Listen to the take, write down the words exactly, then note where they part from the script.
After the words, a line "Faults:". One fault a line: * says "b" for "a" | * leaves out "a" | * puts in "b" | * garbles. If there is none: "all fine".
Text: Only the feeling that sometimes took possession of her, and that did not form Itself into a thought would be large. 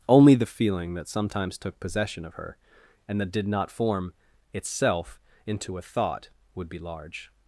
Only the feeling that sometimes took possession of her, and that did not form Itself into a thought would be large.
Faults:
all fine